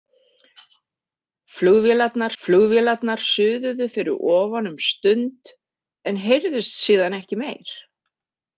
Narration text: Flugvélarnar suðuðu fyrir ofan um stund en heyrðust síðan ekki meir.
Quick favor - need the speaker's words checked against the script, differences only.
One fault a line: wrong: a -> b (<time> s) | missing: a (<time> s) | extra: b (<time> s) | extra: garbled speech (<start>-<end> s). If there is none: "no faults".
extra: flugvélarnar (2.4 s)